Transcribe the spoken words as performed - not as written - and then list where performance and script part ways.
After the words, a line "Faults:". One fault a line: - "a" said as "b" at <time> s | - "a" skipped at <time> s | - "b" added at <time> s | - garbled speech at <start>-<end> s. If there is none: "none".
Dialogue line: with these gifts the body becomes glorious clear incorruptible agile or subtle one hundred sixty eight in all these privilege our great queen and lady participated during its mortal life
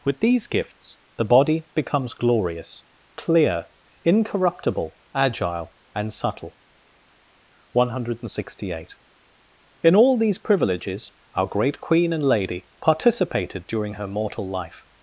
with these gifts the body becomes glorious clear incorruptible agile and subtle one hundred sixty eight in all these privileges our great queen and lady participated during her mortal life
Faults:
- "or" said as "and" at 5.9 s
- "privilege" said as "privileges" at 10.4 s
- "its" said as "her" at 13.9 s